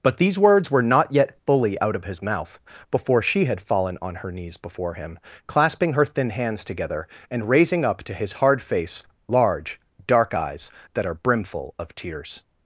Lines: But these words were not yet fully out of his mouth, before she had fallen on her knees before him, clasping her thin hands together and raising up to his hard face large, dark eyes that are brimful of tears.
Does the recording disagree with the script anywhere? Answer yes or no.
no